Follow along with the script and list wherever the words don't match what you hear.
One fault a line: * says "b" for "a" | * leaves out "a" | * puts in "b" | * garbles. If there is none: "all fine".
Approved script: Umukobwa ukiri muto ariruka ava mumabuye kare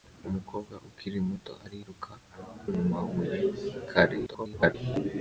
* leaves out "ava"
* garbles